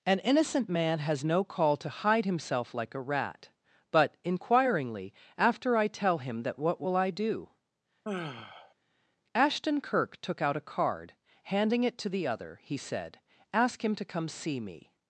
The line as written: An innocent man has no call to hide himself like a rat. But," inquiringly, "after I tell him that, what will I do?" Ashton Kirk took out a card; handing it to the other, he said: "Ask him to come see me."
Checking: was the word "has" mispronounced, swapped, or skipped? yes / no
no